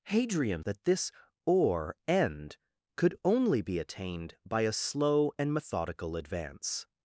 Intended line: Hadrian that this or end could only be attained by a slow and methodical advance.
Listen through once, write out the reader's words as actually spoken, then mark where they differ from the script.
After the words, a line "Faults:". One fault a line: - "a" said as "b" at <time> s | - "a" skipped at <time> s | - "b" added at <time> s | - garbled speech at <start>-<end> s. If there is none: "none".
Hadrian that this or end could only be attained by a slow and methodical advance.
Faults:
none